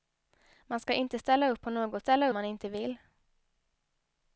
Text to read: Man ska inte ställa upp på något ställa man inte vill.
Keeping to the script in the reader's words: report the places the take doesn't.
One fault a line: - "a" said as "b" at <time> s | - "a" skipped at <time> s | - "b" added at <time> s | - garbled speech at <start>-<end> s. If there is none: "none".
none